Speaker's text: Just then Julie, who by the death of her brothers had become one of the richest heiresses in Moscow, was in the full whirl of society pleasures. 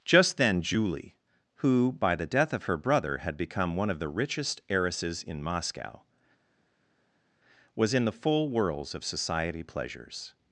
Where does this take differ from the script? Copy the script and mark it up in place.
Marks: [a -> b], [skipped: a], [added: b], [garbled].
Just then Julie, who by the death of her [brothers -> brother] had become one of the richest heiresses in Moscow, was in the full [whirl -> whirls] of society pleasures.